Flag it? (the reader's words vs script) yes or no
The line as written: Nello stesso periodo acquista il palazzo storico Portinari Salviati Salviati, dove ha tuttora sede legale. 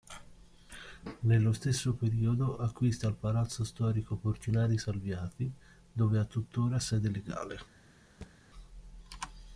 yes